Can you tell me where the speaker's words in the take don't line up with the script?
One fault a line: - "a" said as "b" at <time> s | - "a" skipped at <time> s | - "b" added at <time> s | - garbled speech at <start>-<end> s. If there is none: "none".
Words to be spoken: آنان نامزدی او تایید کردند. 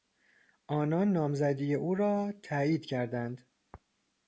- "را" added at 1.9 s